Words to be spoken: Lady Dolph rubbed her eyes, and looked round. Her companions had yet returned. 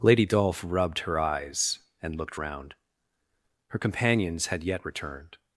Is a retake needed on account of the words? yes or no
no